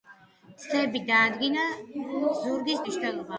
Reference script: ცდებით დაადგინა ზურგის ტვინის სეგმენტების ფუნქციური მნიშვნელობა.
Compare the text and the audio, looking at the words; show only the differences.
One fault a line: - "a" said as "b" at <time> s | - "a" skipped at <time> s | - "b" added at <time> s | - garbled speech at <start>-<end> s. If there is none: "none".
- "ტვინის სეგმენტების ფუნქციური" skipped at 2.8 s